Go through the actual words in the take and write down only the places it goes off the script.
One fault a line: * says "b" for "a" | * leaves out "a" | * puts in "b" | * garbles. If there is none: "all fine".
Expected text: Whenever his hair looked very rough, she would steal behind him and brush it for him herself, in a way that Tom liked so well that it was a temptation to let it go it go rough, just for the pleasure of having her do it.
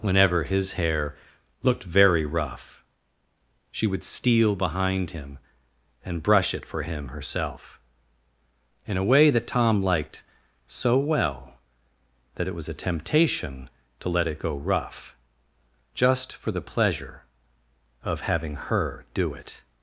* leaves out "it go"